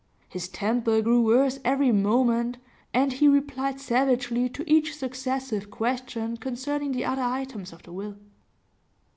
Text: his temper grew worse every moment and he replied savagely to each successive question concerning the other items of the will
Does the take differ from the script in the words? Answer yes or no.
no